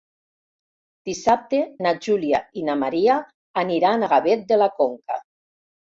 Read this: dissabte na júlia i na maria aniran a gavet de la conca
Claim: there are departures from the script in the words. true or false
false